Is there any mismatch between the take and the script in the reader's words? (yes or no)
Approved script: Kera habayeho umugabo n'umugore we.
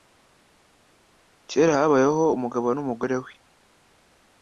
no